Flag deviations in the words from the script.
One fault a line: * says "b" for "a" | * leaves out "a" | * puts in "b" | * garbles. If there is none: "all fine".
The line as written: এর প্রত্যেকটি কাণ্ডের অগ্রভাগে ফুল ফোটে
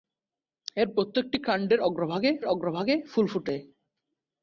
* puts in "অগ্রভাগে"